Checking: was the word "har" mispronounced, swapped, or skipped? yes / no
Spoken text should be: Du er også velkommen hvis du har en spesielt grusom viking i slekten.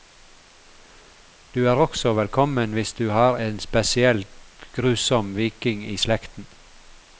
no